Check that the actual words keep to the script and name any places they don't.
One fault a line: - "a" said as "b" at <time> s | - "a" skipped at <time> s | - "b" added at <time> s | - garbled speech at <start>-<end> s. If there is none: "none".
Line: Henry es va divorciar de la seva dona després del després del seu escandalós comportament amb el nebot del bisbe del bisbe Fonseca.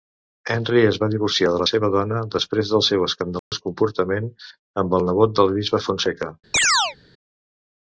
- "després del" skipped at 2.8 s
- "del bisbe" skipped at 5.9 s